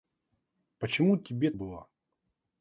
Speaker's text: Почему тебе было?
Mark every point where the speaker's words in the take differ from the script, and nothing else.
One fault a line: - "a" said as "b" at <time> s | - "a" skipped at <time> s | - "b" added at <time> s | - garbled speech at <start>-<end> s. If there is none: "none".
none